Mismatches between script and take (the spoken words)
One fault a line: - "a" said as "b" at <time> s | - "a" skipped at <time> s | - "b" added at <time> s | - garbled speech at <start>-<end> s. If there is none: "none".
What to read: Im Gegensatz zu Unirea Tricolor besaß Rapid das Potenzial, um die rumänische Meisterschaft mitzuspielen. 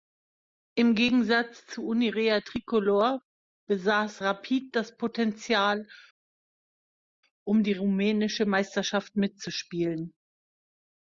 none